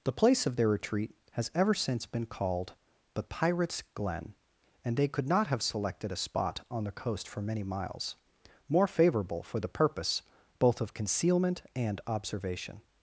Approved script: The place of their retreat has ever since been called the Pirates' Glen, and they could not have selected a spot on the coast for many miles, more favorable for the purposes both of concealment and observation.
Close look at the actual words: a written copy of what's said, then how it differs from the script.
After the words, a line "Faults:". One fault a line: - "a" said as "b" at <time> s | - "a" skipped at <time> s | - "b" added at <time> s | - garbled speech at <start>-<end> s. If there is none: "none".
The place of their retreat has ever since been called the Pirates' Glen, and they could not have selected a spot on the coast for many miles, more favorable for the purpose both of concealment and observation.
Faults:
- "purposes" said as "purpose" at 9.7 s